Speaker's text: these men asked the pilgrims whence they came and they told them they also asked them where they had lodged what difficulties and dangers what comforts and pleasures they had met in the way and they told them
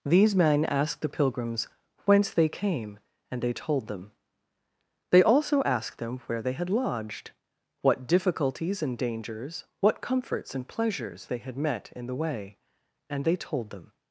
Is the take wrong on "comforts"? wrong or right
right